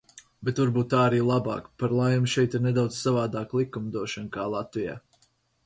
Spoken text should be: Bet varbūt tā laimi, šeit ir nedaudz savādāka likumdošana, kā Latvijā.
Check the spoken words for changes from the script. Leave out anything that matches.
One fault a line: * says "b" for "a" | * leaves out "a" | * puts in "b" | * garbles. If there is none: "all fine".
* puts in "arī labāk Par"